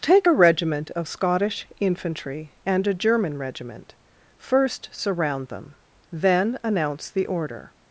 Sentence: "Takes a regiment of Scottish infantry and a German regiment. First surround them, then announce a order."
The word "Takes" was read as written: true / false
false